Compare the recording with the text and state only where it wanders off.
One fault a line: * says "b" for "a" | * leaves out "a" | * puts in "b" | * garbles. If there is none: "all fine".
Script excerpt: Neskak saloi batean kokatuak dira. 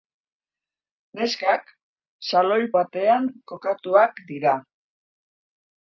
all fine